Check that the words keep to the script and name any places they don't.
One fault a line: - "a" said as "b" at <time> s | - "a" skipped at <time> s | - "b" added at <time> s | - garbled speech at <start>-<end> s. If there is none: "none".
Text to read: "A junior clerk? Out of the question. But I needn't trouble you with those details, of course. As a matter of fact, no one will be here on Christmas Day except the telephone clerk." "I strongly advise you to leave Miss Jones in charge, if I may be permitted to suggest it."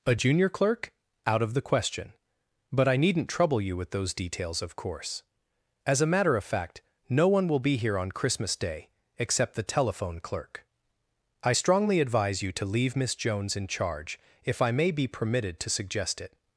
none